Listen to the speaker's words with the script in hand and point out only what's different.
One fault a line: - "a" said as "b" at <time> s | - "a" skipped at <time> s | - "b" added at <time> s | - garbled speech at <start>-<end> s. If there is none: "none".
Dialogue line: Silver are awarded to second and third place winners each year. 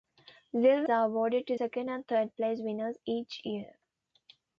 none